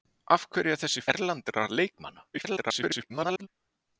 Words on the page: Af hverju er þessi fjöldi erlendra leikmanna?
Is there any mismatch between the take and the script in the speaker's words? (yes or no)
yes